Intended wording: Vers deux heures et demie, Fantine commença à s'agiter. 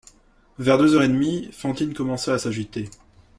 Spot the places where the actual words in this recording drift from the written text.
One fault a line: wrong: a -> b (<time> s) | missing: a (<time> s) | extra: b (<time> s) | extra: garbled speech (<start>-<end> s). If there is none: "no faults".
no faults